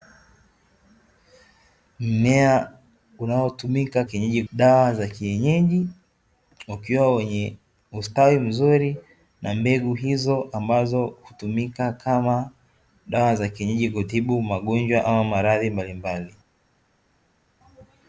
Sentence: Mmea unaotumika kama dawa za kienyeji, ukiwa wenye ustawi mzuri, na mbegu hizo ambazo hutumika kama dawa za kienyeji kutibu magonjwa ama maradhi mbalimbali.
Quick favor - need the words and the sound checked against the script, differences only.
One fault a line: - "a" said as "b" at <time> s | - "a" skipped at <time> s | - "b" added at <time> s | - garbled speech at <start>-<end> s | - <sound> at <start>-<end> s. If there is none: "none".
- "kama" said as "kienyeji" at 4.0 s